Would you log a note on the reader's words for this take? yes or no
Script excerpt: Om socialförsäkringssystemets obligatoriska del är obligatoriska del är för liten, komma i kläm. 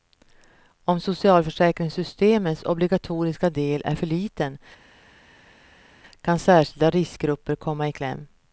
yes